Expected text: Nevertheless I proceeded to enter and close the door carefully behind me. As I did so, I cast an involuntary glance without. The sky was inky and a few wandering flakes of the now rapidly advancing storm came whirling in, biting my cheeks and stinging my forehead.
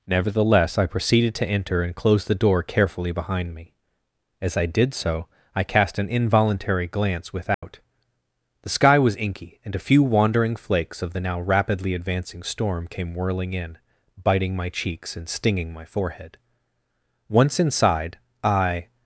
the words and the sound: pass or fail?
fail